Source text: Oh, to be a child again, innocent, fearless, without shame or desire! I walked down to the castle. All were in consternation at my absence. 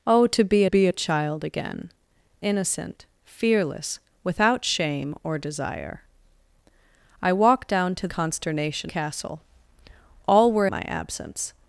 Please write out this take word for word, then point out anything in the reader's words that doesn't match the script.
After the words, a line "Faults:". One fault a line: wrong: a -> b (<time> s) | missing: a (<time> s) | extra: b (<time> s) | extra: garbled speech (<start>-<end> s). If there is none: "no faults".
Oh, to be be a child again, innocent, fearless, without shame or desire! I walked down to consternation castle. All were my absence.
Faults:
extra: be (0.6 s)
wrong: the -> consternation (8.1 s)
missing: in consternation at (10.7 s)